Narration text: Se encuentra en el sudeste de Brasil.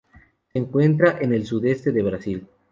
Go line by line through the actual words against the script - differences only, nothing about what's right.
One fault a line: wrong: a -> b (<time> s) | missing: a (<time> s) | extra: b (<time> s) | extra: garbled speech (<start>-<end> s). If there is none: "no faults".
no faults